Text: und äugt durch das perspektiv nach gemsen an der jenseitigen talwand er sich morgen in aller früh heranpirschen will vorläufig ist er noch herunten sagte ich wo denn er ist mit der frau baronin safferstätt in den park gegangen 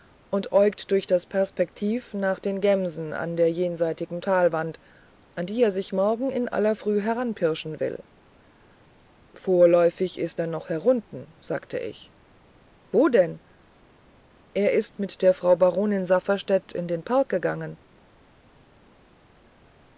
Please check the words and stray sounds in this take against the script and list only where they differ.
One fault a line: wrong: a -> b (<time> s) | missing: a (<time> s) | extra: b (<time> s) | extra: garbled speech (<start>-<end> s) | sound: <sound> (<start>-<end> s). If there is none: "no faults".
extra: den (2.4 s)
extra: an die (5.3 s)